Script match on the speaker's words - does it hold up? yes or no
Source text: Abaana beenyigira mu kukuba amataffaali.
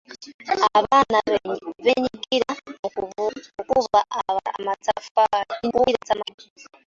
no